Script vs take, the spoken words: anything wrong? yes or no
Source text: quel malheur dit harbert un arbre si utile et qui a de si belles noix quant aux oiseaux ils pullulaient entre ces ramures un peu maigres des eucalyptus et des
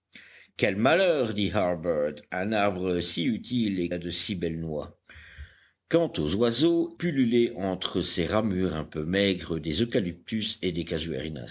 yes